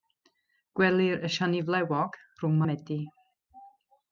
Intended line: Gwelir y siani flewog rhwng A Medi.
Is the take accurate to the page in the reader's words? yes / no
yes